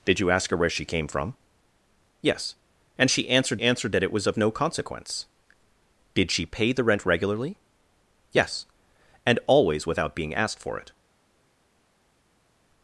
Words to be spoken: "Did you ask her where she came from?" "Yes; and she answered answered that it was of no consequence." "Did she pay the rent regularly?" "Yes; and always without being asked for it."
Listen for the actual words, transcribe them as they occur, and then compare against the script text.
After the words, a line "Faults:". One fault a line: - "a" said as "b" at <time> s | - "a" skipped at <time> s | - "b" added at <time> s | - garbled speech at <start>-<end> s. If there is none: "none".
"Did you ask her where she came from?" "Yes; and she answered answered that it was of no consequence." "Did she pay the rent regularly?" "Yes; and always without being asked for it."
Faults:
none